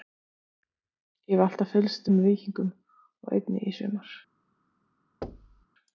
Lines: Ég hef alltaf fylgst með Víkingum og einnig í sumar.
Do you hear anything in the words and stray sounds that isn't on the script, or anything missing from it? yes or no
yes